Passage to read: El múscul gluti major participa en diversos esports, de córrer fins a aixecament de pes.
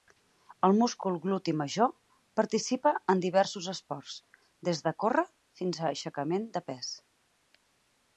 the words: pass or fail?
fail